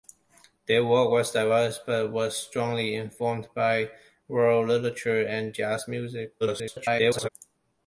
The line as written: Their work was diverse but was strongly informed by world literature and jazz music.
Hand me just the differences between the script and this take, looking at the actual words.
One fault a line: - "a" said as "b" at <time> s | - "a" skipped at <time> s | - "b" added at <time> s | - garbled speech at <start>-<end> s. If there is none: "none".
- garbled speech at 6.4-7.3 s